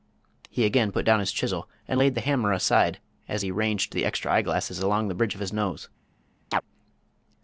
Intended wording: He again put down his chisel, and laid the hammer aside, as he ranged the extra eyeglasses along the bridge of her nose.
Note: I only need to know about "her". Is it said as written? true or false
false